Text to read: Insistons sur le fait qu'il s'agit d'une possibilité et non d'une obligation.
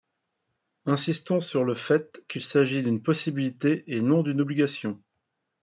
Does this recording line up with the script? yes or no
yes